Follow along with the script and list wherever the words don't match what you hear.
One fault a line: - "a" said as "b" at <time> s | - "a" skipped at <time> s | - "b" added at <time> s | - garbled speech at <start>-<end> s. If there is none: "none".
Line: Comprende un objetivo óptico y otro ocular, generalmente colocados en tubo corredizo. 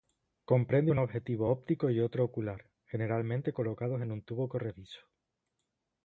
- "un" added at 4.1 s